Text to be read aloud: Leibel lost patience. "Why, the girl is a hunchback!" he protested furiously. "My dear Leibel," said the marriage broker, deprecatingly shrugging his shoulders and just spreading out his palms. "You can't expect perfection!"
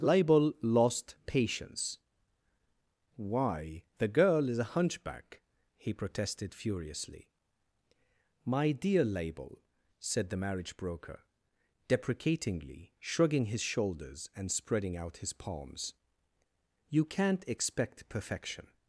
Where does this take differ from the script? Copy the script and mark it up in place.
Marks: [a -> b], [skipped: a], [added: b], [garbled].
Leibel lost patience. "Why, the girl is a hunchback!" he protested furiously. "My dear Leibel," said the marriage broker, deprecatingly shrugging his shoulders and [skipped: just] spreading out his palms. "You can't expect perfection!"